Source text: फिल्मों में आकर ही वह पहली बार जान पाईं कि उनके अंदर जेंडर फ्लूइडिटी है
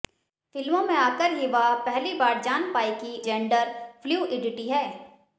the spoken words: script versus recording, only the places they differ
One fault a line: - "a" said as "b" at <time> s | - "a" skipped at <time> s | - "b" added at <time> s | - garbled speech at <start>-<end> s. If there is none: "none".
- "उनके अंदर" skipped at 3.2 s